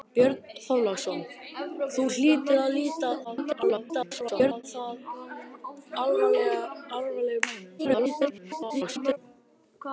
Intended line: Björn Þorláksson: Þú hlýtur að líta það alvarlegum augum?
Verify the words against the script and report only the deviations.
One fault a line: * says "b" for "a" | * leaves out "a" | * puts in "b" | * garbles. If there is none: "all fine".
* garbles
* garbles